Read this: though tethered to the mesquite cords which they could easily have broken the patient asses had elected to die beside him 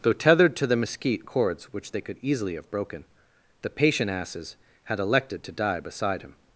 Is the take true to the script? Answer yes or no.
yes